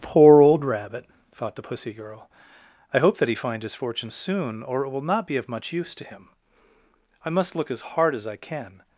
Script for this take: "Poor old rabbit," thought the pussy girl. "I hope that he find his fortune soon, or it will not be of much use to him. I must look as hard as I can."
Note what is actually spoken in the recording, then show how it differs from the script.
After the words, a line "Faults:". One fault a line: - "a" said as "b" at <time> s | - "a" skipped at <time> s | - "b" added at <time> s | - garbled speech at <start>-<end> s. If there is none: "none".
"Poor old rabbit," thought the pussy girl. "I hope that he find his fortune soon, or it will not be of much use to him. I must look as hard as I can."
Faults:
none